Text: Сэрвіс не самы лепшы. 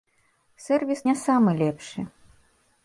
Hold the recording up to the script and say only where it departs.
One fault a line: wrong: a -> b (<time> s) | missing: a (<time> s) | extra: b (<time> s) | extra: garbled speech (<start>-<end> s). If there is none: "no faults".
no faults